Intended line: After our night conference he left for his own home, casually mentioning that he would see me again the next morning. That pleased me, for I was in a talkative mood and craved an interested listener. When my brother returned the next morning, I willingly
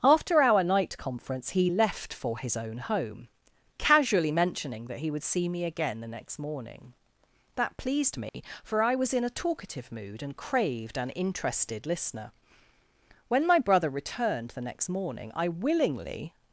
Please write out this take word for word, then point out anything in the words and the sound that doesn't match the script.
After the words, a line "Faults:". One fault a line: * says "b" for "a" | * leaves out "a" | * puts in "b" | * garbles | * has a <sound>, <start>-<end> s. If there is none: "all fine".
After our night conference he left for his own home, casually mentioning that he would see me again the next morning. That pleased me, for I was in a talkative mood and craved an interested listener. When my brother returned the next morning, I willingly
Faults:
* has a dropout, 8.3-8.3 s